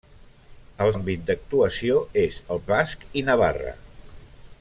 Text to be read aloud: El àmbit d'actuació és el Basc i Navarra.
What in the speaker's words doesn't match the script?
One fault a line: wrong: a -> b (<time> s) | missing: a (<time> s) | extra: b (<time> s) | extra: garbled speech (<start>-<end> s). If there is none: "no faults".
no faults